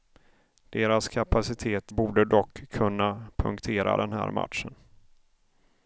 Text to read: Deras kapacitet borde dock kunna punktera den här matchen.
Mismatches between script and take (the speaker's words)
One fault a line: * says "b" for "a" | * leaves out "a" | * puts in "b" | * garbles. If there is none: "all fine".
all fine